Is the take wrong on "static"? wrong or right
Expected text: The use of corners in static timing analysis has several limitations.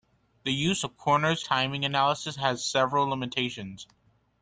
wrong